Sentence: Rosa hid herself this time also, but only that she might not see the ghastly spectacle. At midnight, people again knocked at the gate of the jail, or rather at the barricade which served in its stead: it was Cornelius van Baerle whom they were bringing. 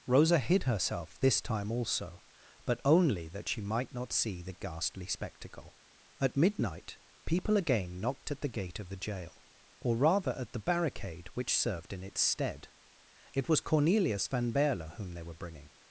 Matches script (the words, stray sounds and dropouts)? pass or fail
pass